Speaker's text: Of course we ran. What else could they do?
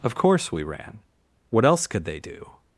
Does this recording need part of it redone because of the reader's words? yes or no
no